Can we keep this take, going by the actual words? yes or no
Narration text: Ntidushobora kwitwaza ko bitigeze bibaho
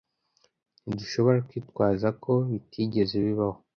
yes